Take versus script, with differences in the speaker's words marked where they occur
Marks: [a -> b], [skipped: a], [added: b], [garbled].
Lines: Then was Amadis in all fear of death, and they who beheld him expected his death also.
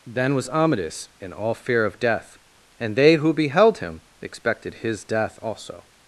Then was Amadis in all fear of death, and they who beheld him expected his death also.